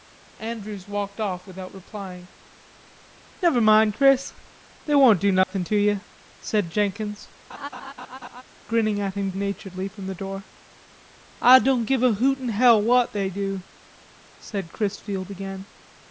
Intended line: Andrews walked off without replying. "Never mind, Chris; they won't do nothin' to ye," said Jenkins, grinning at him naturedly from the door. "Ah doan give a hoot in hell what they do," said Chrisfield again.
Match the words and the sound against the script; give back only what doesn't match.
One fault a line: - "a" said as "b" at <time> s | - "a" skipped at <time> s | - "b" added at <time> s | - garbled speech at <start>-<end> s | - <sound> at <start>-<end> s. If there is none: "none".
- dropout at 5.4-5.5 s
- laugh at 7.5-8.4 s